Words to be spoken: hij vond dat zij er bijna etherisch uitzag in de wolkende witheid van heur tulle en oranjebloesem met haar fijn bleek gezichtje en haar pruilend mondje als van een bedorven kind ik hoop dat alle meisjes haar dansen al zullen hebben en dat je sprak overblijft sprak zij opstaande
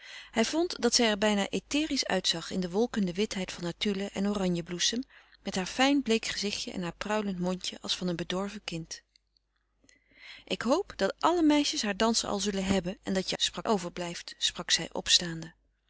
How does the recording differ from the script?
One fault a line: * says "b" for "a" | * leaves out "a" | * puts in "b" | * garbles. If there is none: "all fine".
all fine